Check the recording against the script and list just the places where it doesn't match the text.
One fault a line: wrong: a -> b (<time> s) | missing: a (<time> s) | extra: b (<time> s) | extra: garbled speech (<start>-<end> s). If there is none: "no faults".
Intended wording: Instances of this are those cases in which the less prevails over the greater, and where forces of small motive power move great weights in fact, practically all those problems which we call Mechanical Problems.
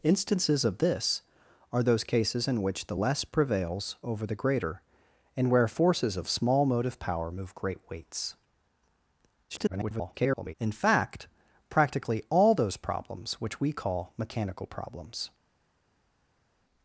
extra: garbled speech (9.5-10.5 s)